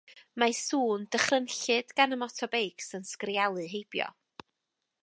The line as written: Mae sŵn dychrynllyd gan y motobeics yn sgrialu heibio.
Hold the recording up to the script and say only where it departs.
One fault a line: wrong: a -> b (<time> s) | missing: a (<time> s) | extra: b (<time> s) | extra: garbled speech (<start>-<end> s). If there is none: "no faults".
no faults